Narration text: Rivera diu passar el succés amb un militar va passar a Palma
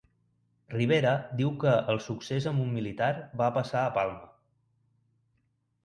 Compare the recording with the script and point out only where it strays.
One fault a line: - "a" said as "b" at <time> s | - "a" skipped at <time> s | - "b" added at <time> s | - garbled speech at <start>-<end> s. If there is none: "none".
- "passar" said as "que" at 1.6 s